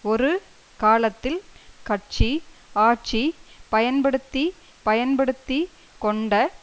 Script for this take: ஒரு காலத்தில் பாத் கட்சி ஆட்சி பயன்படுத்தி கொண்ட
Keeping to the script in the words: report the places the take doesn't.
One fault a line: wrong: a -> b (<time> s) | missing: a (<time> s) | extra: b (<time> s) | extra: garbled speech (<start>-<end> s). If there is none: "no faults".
missing: பாத் (1.4 s)
extra: பயன்படுத்தி (4.8 s)